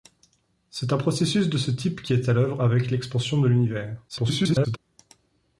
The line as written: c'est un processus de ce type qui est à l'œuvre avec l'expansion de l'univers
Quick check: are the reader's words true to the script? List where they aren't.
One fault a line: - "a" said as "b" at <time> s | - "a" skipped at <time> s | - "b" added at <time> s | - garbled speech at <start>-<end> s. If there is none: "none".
- garbled speech at 4.1-4.8 s